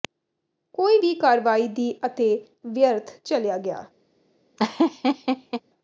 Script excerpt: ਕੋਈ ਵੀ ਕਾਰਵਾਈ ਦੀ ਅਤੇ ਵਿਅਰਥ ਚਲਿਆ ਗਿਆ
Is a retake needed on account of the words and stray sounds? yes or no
yes